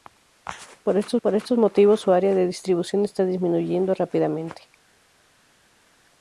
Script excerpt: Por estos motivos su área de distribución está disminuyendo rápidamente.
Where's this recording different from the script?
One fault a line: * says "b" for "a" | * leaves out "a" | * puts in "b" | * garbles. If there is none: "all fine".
* puts in "por estos"